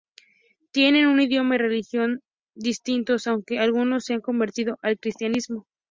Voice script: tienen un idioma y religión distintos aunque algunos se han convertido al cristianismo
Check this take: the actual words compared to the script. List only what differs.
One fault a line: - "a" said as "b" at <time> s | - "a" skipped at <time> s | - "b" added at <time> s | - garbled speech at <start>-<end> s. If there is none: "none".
none